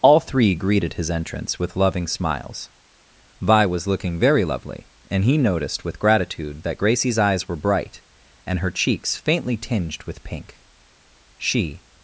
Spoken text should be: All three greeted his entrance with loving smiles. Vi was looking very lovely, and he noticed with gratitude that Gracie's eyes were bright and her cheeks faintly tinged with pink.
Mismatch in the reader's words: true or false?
true